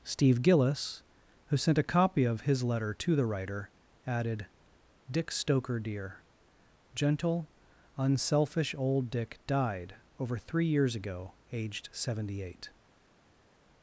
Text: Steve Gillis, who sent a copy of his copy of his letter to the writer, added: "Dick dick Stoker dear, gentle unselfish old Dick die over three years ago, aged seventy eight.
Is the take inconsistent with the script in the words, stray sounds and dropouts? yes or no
yes